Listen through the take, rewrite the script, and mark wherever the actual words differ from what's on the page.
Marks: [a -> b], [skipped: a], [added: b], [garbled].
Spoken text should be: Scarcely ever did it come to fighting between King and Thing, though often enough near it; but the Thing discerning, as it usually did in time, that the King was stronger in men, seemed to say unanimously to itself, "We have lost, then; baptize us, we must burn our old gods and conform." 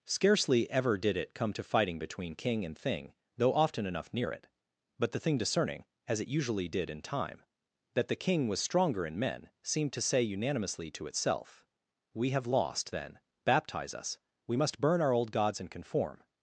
Scarcely ever did it come to fighting between King and Thing, though often enough near it; but the Thing discerning, as it usually did in time, that the King was stronger in men, seemed to say unanimously to itself, "We have lost, then; baptize us, we must burn our old gods and conform."